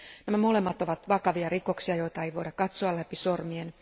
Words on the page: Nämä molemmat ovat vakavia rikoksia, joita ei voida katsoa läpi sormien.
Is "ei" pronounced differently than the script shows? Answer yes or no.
no